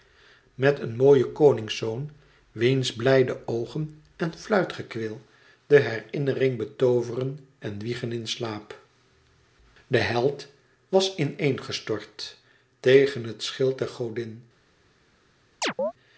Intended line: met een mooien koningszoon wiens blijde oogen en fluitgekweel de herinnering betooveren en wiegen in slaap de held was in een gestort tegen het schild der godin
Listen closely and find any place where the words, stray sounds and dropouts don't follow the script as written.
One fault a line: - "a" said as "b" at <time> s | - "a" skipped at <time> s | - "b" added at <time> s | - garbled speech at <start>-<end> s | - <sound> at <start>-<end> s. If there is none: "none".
- chirp at 15.6-15.9 s